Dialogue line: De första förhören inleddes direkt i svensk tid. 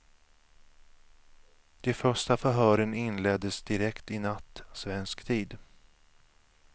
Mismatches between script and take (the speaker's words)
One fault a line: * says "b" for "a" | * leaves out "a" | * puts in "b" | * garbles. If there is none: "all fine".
* puts in "natt"